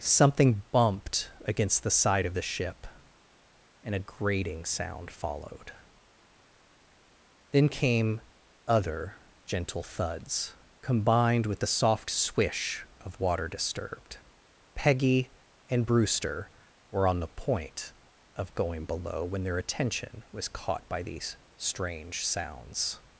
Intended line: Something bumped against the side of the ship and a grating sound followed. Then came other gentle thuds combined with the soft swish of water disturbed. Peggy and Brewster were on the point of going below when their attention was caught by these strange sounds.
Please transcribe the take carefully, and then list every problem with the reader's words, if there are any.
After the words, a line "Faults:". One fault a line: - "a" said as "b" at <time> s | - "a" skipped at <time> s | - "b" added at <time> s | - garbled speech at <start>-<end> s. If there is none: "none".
Something bumped against the side of the ship and a grating sound followed. Then came other gentle thuds combined with the soft swish of water disturbed. Peggy and Brewster were on the point of going below when their attention was caught by these strange sounds.
Faults:
none